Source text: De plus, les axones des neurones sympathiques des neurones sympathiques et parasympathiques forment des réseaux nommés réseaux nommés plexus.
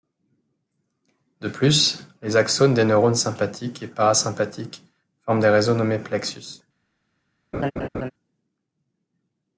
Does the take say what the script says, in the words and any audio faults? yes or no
no